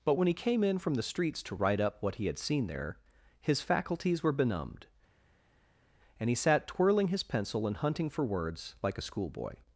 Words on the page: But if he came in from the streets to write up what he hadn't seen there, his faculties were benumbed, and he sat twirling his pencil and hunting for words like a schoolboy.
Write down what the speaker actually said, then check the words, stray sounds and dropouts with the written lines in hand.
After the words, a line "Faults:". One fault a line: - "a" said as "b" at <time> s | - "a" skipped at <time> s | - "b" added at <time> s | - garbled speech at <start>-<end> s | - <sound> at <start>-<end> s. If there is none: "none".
But when he came in from the streets to write up what he had seen there, his faculties were benumbed, and he sat twirling his pencil and hunting for words like a schoolboy.
Faults:
- "if" said as "when" at 0.1 s
- "hadn't" said as "had" at 2.2 s